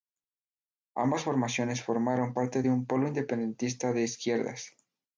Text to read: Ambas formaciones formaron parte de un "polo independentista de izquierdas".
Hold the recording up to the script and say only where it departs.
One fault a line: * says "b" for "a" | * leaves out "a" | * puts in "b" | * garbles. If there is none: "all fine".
all fine